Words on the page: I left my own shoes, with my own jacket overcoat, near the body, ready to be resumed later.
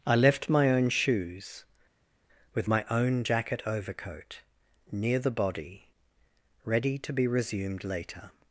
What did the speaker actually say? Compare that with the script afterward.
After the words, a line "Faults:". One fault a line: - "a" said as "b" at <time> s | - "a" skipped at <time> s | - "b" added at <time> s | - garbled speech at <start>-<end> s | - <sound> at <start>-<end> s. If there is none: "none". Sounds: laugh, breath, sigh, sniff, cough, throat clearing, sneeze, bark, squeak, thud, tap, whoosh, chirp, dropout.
I left my own shoes, with my own jacket overcoat, near the body, ready to be resumed later.
Faults:
none